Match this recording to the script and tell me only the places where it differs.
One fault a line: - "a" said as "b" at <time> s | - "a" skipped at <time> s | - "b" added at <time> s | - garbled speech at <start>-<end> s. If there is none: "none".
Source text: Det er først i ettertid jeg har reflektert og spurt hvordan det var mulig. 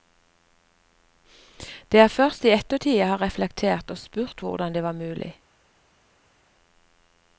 none